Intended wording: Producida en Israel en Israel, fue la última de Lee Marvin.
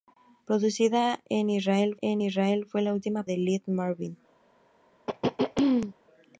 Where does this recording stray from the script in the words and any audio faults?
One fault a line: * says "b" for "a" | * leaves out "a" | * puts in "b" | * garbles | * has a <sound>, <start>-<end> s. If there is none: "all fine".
* has a throat clearing, 5.1-5.9 s